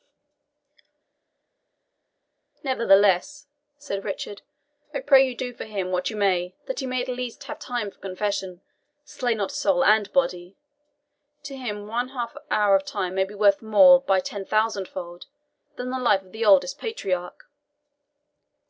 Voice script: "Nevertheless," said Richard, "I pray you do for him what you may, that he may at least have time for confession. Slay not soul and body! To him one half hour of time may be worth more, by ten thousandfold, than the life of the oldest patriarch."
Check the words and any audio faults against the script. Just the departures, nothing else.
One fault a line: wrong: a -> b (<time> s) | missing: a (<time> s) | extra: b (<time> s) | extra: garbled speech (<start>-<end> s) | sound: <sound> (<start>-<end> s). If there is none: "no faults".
no faults